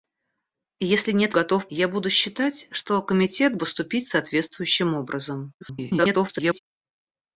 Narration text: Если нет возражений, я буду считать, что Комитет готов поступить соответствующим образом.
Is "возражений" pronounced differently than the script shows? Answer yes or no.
yes